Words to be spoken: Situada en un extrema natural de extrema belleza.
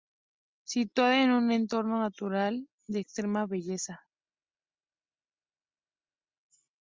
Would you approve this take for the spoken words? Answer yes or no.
no